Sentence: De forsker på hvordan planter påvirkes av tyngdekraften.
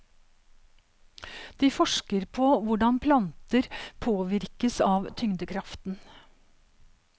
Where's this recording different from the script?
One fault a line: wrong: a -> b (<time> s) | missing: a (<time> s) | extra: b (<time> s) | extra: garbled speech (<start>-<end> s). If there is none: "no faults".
no faults